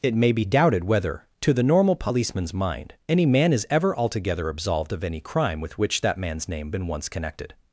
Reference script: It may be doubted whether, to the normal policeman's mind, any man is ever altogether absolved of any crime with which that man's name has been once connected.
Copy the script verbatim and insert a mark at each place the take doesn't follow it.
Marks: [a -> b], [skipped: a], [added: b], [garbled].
It may be doubted whether, to the normal policeman's mind, any man is ever altogether absolved of any crime with which that man's name [skipped: has] been once connected.